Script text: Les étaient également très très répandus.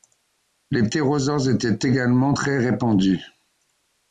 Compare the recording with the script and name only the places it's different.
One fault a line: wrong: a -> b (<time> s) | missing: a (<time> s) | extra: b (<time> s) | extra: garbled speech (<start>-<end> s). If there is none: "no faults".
extra: ptérosaures (0.8 s)
missing: très (2.6 s)